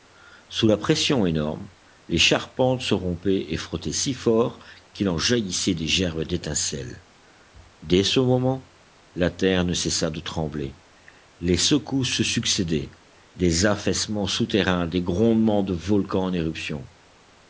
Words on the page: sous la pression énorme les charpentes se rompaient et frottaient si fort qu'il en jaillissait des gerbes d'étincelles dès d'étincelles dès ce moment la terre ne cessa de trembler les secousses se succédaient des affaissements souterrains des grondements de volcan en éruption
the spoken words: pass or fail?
fail